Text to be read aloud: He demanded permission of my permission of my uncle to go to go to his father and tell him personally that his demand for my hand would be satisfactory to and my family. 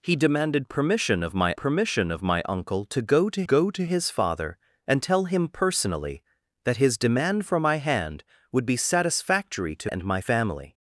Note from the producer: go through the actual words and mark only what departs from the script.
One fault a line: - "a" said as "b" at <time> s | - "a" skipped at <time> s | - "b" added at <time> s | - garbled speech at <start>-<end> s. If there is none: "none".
none